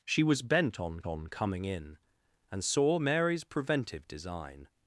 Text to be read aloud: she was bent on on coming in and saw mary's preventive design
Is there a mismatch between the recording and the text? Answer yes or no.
no